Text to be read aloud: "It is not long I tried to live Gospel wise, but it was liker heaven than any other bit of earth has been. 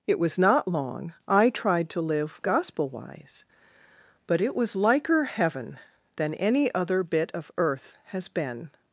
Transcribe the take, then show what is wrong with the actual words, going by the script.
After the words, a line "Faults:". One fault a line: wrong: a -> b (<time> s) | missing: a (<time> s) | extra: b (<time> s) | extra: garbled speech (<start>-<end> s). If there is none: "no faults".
"It was not long I tried to live Gospel wise, but it was liker heaven than any other bit of earth has been.
Faults:
wrong: is -> was (0.2 s)